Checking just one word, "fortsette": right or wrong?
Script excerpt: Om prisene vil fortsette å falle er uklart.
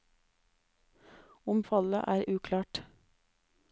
wrong